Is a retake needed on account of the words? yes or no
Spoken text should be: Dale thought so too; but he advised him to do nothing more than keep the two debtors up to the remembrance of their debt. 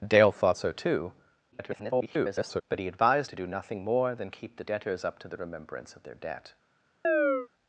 yes